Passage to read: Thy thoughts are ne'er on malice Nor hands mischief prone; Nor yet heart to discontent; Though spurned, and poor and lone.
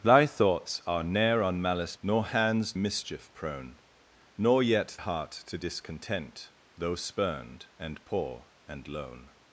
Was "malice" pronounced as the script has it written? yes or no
yes